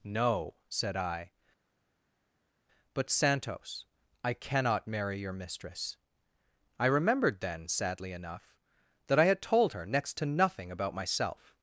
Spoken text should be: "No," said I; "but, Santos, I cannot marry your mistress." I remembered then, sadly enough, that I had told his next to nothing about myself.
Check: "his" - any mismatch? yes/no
yes